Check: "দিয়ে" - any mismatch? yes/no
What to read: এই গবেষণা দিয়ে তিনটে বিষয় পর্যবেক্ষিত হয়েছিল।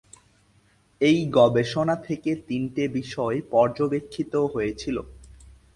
yes